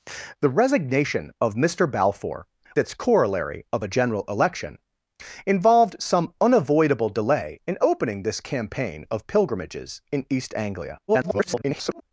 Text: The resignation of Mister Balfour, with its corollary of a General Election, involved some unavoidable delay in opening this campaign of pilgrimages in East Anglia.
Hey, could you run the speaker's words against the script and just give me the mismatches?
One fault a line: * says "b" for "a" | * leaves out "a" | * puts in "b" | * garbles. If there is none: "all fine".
* leaves out "with"
* garbles